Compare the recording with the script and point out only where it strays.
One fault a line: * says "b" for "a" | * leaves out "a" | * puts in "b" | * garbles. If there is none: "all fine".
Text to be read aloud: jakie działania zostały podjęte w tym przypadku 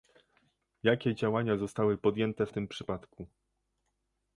all fine